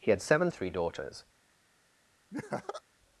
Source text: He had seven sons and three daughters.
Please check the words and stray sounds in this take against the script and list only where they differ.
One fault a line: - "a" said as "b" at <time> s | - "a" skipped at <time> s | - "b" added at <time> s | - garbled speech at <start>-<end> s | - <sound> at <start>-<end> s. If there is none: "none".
- "sons and" skipped at 0.5 s
- laugh at 2.3-2.8 s